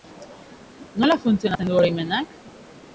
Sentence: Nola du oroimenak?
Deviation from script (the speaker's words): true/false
true